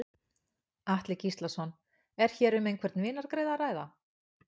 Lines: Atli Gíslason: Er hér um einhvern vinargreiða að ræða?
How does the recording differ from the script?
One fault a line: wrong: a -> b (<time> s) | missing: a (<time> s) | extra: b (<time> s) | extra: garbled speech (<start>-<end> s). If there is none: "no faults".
no faults